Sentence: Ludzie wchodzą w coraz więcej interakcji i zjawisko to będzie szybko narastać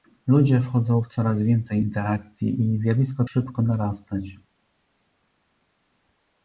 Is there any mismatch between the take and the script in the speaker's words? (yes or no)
yes